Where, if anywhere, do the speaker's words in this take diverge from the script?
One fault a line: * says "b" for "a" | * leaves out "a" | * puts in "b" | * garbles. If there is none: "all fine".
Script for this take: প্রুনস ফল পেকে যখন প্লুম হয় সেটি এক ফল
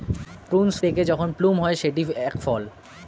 * leaves out "ফল"